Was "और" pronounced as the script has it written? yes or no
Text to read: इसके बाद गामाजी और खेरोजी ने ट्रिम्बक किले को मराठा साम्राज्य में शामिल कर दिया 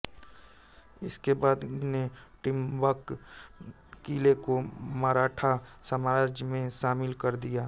no